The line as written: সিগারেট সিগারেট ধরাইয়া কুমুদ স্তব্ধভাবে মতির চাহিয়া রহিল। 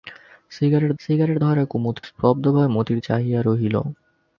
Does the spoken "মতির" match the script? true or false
true